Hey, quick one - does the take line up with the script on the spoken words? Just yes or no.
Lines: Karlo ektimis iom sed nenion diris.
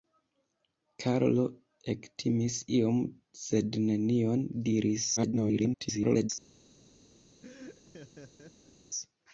no